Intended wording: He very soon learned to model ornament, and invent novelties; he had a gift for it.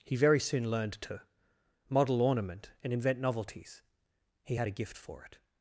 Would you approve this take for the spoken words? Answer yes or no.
yes